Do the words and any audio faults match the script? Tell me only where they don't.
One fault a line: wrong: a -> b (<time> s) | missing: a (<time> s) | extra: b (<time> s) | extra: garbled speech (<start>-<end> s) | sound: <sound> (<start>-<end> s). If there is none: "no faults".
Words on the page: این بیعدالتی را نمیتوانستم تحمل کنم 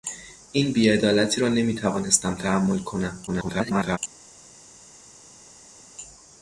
extra: garbled speech (3.3-4.0 s)